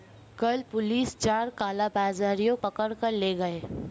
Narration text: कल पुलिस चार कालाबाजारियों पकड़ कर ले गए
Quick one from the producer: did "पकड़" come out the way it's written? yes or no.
yes